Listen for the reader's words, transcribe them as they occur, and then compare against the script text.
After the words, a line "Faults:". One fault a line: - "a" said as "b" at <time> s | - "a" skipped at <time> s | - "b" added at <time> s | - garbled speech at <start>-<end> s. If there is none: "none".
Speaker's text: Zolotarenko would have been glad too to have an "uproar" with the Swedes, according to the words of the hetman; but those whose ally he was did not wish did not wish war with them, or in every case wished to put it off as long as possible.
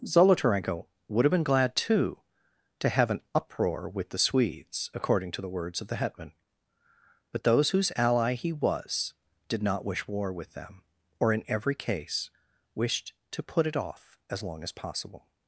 Zolotarenko would have been glad too to have an "uproar" with the Swedes, according to the words of the hetman; but those whose ally he was did not wish war with them, or in every case wished to put it off as long as possible.
Faults:
- "did not wish" skipped at 10.1 s